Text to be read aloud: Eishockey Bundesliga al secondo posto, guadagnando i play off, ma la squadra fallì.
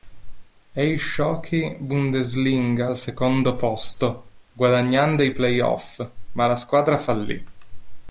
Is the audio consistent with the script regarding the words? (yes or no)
yes